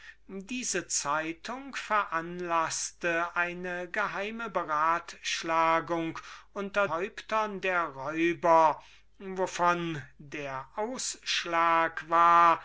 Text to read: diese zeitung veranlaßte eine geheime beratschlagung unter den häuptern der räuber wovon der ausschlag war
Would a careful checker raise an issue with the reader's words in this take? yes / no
yes